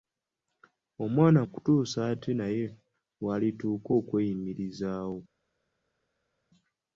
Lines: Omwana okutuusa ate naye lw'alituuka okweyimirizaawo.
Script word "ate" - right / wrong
right